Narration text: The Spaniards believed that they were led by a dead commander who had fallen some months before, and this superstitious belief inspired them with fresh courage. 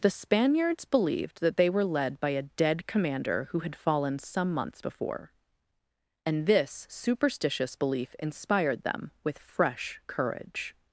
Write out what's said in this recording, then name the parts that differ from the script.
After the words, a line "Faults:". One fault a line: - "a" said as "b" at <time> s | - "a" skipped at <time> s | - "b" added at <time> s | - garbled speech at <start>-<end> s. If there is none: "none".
The Spaniards believed that they were led by a dead commander who had fallen some months before, and this superstitious belief inspired them with fresh courage.
Faults:
none